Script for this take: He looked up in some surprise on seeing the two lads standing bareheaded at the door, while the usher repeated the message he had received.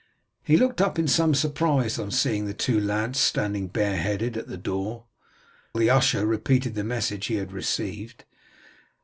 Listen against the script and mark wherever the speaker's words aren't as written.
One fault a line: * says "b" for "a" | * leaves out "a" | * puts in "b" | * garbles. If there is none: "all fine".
* leaves out "while"